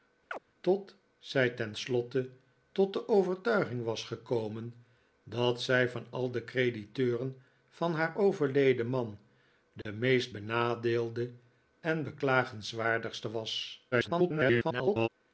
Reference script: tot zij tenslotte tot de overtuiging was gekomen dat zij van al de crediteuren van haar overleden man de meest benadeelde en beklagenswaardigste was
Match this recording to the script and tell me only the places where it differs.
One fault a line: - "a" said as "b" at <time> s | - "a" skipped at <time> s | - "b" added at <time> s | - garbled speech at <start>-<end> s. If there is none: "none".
- garbled speech at 13.9-15.1 s